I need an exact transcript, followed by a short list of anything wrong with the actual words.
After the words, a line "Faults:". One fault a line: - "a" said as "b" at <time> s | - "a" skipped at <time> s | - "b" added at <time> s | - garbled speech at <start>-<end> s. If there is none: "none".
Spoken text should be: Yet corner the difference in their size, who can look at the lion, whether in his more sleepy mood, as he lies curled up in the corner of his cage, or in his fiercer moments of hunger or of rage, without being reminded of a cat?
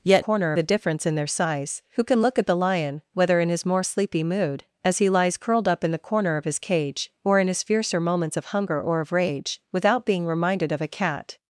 Yet corner the difference in their size, who can look at the lion, whether in his more sleepy mood, as he lies curled up in the corner of his cage, or in his fiercer moments of hunger or of rage, without being reminded of a cat?
Faults:
none